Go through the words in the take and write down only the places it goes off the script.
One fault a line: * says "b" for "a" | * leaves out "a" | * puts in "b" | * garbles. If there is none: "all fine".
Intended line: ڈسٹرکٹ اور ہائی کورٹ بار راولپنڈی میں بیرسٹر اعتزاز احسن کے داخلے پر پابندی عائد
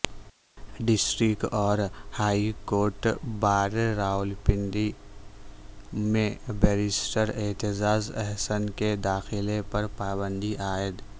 all fine